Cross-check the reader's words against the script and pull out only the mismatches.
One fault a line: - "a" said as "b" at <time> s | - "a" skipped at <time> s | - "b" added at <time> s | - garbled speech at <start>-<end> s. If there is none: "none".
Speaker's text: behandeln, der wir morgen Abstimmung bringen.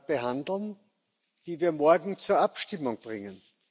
- "der" said as "die" at 1.4 s
- "zur" added at 2.2 s